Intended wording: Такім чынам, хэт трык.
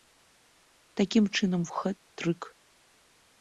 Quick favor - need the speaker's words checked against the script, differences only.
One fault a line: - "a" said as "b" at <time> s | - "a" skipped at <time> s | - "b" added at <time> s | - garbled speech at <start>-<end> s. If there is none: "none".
none